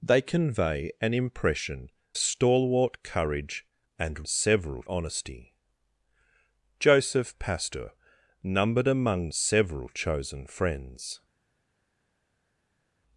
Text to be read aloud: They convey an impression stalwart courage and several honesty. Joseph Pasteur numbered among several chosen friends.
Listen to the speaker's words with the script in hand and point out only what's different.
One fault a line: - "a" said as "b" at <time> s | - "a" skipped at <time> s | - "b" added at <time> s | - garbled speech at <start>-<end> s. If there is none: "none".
none